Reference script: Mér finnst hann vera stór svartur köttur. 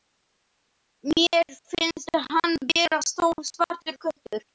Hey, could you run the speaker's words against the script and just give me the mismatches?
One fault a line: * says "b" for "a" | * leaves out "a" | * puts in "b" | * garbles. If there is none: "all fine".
all fine